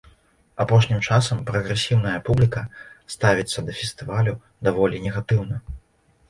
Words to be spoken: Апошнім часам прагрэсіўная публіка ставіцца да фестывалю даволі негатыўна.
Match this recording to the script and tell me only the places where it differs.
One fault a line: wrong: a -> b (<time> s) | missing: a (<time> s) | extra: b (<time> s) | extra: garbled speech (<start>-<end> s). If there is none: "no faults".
no faults